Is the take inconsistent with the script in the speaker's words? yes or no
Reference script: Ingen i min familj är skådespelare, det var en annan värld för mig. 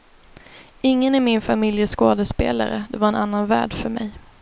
no